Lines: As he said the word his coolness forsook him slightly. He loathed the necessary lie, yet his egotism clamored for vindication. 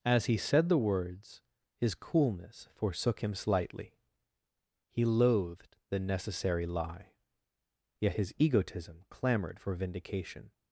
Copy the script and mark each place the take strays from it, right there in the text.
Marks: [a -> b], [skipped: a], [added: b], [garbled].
As he said the [word -> words] his coolness forsook him slightly. He loathed the necessary lie, yet his egotism clamored for vindication.